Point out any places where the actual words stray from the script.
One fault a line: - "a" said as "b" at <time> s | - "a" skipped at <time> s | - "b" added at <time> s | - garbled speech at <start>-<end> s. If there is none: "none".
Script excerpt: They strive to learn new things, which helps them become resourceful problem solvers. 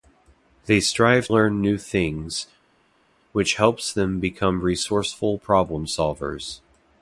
- "to" skipped at 1.3 s